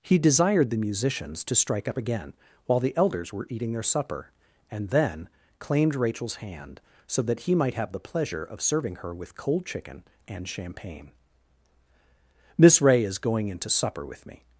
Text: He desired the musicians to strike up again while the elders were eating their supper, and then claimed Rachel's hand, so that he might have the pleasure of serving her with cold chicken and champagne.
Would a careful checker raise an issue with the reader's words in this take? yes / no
yes